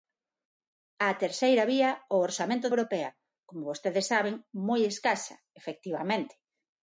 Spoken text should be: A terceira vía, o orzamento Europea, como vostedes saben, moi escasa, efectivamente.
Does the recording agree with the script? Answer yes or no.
yes